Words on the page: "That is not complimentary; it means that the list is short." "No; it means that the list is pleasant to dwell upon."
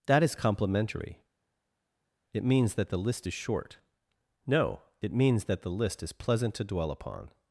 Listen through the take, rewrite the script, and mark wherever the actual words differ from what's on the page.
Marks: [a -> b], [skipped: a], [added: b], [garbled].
"That is [skipped: not] complimentary; it means that the list is short." "No; it means that the list is pleasant to dwell upon."